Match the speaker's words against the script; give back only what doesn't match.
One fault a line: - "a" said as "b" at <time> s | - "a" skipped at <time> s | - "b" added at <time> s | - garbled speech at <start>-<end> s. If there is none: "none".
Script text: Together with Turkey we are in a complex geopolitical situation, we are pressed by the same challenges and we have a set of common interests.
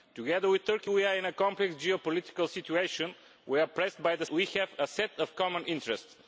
- "same challenges and" skipped at 4.2 s